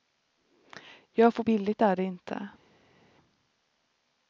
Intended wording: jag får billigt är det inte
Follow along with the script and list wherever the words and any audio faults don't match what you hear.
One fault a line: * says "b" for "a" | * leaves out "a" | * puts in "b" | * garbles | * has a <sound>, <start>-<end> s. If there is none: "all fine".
all fine